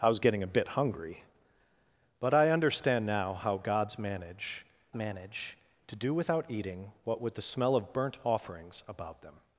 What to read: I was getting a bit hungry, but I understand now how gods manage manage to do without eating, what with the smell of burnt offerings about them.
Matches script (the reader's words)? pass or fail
pass